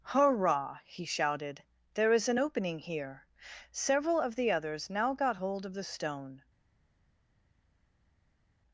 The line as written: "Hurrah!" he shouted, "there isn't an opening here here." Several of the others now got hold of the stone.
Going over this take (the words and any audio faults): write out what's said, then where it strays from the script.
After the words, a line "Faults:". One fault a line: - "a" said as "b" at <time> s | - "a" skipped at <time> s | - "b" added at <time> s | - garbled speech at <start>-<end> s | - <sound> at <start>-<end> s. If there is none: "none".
"Hurrah!" he shouted, "there is an opening here." Several of the others now got hold of the stone.
Faults:
- "isn't" said as "is" at 2.1 s
- "here" skipped at 3.3 s